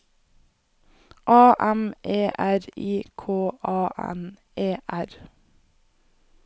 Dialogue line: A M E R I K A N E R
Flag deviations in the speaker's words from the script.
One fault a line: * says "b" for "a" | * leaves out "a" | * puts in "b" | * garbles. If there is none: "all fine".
all fine